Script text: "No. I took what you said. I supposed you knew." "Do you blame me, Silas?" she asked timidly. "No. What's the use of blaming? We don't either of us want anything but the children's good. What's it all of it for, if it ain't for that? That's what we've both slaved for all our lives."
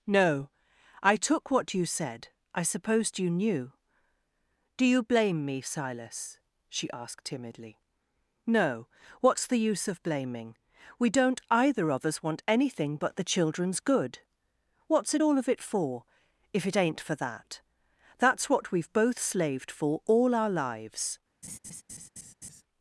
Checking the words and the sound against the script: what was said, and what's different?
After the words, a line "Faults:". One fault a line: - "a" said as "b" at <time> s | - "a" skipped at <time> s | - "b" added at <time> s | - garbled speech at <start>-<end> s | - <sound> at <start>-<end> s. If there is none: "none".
"No. I took what you said. I supposed you knew." "Do you blame me, Silas?" she asked timidly. "No. What's the use of blaming? We don't either of us want anything but the children's good. What's it all of it for, if it ain't for that? That's what we've both slaved for all our lives."
Faults:
- laugh at 21.4-22.6 s